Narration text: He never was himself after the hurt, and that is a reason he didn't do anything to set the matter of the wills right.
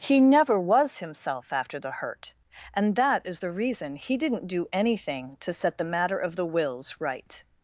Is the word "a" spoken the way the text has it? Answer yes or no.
no